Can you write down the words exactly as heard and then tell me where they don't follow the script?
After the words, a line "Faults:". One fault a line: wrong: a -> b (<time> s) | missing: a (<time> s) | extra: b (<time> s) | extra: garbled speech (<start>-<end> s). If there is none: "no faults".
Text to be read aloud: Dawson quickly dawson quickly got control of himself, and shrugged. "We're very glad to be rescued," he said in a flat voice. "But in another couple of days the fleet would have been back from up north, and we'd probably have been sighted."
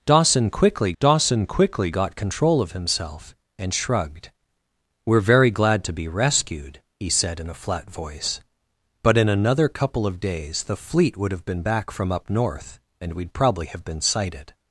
Dawson quickly dawson quickly got control of himself, and shrugged. "We're very glad to be rescued," he said in a flat voice. "But in another couple of days the fleet would have been back from up north, and we'd probably have been sighted."
Faults:
no faults